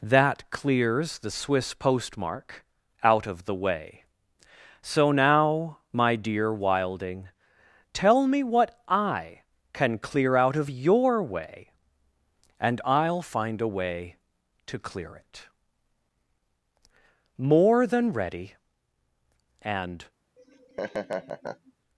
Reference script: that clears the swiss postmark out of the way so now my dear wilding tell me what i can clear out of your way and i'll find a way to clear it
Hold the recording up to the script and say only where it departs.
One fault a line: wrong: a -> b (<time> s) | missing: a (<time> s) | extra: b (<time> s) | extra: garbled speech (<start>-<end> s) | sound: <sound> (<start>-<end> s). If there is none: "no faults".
extra: more than ready and (17.5 s)
sound: laugh (20.4-21.7 s)